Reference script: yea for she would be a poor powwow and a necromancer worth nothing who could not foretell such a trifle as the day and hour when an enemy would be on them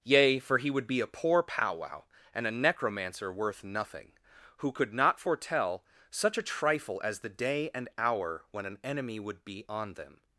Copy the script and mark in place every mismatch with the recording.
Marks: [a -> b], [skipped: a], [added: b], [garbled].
yea for [she -> he] would be a poor powwow and a necromancer worth nothing who could not foretell such a trifle as the day and hour when an enemy would be on them